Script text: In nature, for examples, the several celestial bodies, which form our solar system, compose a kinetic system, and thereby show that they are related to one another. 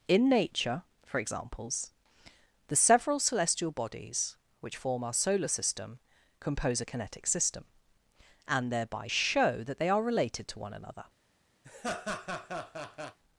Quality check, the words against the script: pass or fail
pass